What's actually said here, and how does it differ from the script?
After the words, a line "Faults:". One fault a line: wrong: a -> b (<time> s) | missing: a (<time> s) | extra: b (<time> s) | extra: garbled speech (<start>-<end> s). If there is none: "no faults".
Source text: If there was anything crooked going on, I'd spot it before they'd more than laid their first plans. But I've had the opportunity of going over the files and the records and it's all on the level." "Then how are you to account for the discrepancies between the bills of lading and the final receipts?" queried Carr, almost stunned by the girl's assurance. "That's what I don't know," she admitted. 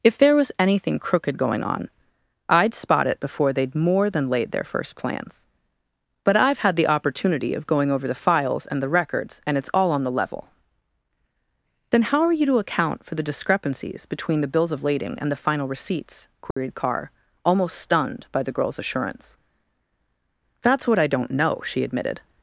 If there was anything crooked going on, I'd spot it before they'd more than laid their first plans. But I've had the opportunity of going over the files and the records and it's all on the level." "Then how are you to account for the discrepancies between the bills of lading and the final receipts?" queried Carr, almost stunned by the girl's assurance. "That's what I don't know," she admitted.
Faults:
no faults